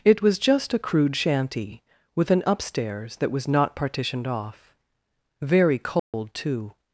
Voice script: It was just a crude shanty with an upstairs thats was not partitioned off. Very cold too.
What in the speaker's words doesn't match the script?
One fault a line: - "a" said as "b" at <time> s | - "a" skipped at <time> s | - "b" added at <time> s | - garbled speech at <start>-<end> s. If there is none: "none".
- "thats" said as "that" at 3.2 s